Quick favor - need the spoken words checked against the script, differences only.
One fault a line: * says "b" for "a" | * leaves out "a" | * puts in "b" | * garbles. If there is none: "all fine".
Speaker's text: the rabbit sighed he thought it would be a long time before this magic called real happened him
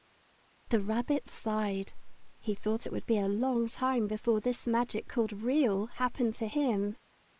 * puts in "to"